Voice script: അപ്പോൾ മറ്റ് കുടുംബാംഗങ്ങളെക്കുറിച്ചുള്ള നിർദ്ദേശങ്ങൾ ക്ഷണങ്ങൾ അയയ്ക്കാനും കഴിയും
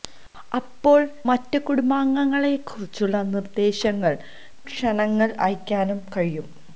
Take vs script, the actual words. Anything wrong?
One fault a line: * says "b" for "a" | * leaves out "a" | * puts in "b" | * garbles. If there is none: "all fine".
all fine